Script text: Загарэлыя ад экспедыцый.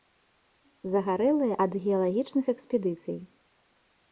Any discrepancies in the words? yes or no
yes